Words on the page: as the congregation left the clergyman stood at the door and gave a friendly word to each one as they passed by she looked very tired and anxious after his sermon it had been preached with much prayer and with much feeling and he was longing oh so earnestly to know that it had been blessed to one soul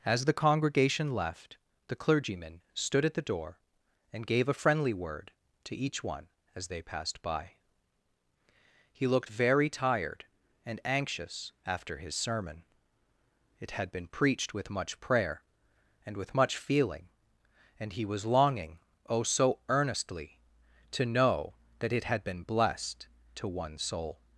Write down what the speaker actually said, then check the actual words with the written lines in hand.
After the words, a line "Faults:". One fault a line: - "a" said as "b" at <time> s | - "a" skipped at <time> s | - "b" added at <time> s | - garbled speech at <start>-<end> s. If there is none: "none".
as the congregation left the clergyman stood at the door and gave a friendly word to each one as they passed by he looked very tired and anxious after his sermon it had been preached with much prayer and with much feeling and he was longing oh so earnestly to know that it had been blessed to one soul
Faults:
- "she" said as "he" at 8.9 s